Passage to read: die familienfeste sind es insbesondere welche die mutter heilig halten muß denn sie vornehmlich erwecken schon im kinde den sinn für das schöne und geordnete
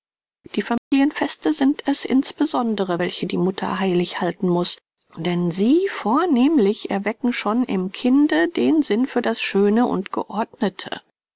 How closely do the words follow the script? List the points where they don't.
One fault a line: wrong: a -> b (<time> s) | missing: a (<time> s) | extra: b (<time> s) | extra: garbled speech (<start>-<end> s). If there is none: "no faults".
no faults